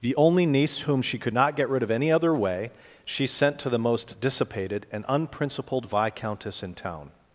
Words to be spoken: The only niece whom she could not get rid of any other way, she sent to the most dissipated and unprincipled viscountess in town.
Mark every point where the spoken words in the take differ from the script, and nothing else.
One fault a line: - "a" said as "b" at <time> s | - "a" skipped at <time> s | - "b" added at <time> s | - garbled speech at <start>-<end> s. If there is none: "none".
none